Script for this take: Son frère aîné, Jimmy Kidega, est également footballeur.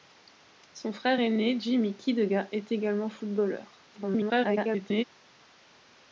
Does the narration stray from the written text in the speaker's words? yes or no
yes